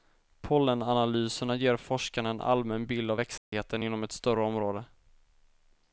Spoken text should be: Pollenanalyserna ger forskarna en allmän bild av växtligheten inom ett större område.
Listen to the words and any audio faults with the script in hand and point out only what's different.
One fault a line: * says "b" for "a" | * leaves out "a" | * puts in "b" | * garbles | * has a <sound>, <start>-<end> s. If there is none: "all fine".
* has a dropout, 3.4-3.5 s